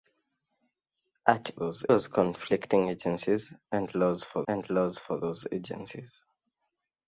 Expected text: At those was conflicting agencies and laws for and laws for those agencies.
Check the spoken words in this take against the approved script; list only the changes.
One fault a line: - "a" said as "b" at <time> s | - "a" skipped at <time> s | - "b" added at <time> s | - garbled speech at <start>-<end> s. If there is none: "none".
none